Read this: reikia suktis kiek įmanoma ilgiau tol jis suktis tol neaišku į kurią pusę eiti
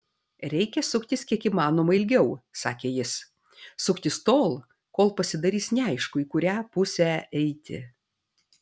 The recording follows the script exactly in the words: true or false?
false